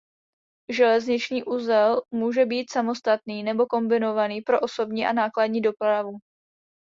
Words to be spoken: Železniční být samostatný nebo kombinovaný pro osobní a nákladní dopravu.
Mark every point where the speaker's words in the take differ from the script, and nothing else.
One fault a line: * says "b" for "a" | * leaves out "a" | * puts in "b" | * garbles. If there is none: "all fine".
* puts in "uzel může"